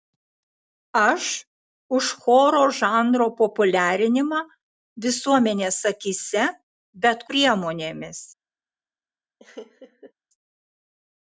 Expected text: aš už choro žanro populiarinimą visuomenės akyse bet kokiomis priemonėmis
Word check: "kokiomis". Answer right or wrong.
wrong